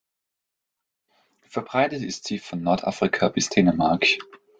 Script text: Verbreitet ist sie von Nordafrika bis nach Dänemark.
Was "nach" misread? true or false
true